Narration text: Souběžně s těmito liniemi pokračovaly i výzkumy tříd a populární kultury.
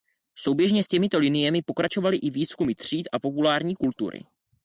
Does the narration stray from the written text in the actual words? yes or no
no